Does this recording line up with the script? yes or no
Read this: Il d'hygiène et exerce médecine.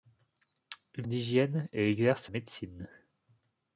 yes